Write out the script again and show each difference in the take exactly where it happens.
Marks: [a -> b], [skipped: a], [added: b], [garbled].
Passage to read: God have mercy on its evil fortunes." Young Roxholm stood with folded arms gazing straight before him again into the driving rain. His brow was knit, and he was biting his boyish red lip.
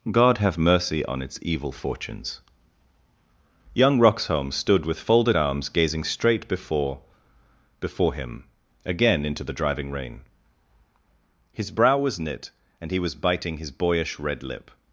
God have mercy on its evil fortunes." Young Roxholm stood with folded arms gazing straight before [added: before] him again into the driving rain. His brow was knit, and he was biting his boyish red lip.